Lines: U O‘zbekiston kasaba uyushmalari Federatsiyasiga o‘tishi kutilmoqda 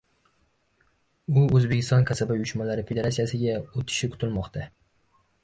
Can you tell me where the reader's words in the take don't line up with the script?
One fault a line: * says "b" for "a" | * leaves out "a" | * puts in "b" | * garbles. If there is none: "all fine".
all fine